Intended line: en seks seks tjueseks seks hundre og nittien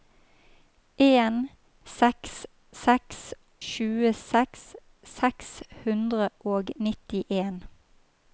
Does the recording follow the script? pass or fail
pass